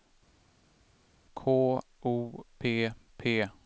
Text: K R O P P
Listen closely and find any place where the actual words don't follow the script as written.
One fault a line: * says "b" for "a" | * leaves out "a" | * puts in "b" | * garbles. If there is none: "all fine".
* leaves out "R"